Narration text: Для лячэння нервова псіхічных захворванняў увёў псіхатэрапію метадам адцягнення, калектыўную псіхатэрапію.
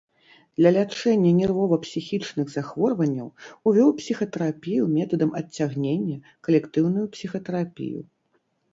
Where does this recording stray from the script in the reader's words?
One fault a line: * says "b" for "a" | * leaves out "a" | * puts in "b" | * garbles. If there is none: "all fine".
all fine